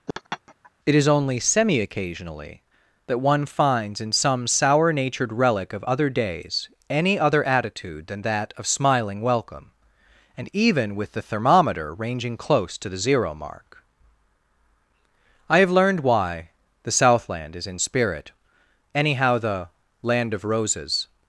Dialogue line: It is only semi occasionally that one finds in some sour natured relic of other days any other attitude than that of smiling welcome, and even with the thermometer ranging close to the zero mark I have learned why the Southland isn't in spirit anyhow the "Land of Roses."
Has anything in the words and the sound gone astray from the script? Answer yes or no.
yes